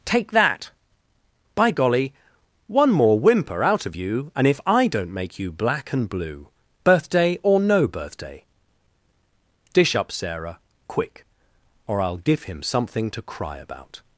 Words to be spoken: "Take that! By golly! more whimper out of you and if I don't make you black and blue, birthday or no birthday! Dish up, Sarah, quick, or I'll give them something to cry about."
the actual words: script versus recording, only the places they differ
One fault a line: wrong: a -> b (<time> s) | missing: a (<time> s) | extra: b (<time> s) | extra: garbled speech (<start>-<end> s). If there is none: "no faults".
extra: one (2.7 s)
wrong: them -> him (12.4 s)